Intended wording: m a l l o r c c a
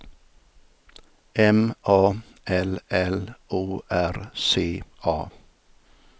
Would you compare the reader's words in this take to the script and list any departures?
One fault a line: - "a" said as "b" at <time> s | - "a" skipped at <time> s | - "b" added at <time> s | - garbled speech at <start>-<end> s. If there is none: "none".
- "c" skipped at 4.8 s